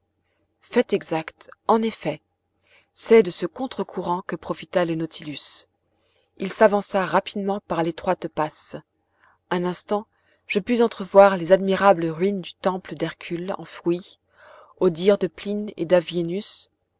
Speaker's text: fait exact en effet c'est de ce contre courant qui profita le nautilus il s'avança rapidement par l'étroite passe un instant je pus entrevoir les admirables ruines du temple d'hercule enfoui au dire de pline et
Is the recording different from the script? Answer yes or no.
yes